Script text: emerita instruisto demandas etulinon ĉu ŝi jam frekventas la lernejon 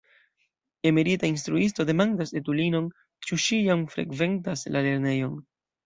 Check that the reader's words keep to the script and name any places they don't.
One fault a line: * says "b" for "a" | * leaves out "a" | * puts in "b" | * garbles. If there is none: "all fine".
all fine